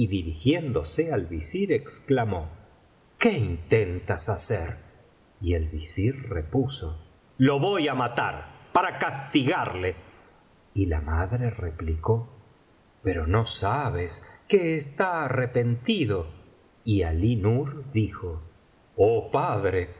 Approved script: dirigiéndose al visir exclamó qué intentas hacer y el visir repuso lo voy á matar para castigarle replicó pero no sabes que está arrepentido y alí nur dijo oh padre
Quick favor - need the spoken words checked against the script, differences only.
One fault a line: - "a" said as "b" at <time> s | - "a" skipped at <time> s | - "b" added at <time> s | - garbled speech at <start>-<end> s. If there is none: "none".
- "y la madre" added at 10.7 s